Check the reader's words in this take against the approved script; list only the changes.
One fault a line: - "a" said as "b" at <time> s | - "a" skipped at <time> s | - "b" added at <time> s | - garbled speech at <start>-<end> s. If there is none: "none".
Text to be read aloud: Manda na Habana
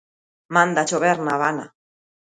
- "chover" added at 0.9 s